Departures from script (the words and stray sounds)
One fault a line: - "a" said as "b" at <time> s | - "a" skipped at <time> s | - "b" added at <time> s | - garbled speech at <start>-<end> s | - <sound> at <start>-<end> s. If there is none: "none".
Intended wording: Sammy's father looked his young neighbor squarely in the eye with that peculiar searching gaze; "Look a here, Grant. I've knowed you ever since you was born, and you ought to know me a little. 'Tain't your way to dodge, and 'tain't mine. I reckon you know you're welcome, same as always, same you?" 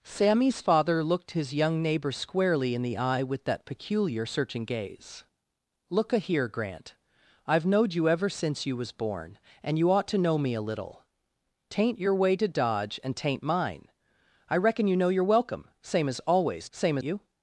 none